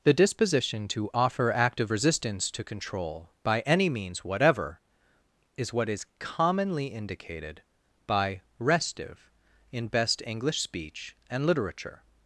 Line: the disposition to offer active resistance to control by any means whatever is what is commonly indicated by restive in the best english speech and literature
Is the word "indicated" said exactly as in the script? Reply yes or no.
yes